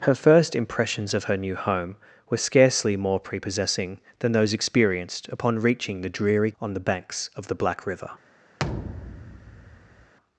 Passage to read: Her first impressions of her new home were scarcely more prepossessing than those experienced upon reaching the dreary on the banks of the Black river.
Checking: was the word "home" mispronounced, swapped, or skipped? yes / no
no